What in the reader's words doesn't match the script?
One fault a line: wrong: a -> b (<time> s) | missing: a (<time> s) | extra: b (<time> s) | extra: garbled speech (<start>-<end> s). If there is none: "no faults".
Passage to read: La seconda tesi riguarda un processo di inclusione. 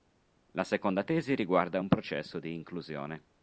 no faults